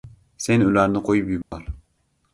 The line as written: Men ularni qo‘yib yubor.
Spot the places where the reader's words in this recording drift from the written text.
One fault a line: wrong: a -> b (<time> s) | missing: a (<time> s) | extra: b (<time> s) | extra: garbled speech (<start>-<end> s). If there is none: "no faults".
wrong: Men -> Sen (0.5 s)